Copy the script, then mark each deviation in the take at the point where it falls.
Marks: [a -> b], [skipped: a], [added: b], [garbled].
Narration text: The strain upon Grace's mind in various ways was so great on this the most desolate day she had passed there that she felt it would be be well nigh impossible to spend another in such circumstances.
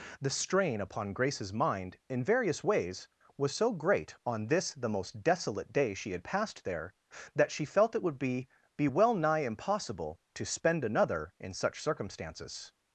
The strain upon Grace's mind in various ways was so great on this the most desolate day she had passed there that she felt it would be be well nigh impossible to spend another in such circumstances.